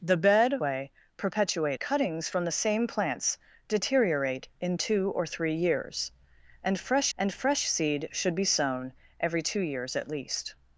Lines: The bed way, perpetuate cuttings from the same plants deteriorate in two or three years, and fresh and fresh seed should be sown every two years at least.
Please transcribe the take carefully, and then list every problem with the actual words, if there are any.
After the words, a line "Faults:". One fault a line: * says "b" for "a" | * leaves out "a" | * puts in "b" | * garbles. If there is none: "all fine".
The bed way, perpetuate cuttings from the same plants deteriorate in two or three years, and fresh and fresh seed should be sown every two years at least.
Faults:
all fine